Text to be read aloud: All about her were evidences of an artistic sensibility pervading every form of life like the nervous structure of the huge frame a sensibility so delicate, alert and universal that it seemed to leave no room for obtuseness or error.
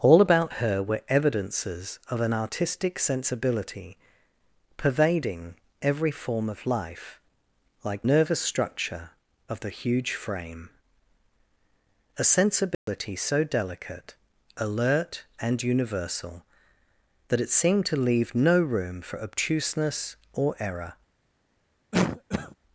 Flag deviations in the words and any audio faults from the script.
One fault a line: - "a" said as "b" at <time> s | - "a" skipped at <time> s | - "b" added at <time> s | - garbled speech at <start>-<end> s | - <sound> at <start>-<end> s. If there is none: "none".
- "the" skipped at 8.1 s
- dropout at 12.7-12.9 s
- cough at 21.9-22.5 s